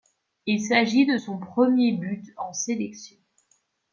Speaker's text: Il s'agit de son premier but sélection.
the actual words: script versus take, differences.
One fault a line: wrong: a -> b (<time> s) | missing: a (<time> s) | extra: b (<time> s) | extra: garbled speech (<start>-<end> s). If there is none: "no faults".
extra: en (2.4 s)